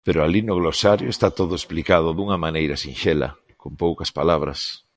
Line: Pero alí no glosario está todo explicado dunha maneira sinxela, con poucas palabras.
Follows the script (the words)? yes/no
yes